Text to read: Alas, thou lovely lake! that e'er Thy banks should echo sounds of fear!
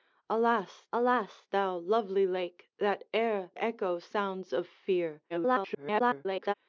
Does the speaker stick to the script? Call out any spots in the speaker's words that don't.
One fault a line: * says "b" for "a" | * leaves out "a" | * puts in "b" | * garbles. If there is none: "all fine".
* puts in "alas"
* leaves out "Thy banks should"
* garbles